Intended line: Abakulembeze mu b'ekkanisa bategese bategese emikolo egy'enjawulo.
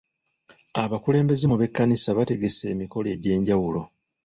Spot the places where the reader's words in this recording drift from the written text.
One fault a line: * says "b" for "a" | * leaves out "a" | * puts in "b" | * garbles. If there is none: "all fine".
* leaves out "bategese"